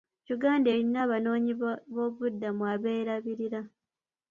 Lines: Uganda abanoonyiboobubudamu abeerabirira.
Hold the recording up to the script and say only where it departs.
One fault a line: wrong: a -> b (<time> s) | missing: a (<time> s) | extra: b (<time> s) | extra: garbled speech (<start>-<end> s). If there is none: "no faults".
extra: erina (0.7 s)